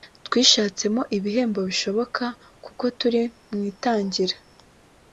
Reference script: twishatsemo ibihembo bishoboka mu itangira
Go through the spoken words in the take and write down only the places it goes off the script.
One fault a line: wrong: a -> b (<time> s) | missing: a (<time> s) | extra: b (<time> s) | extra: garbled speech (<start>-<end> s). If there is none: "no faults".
extra: kuko turi (2.6 s)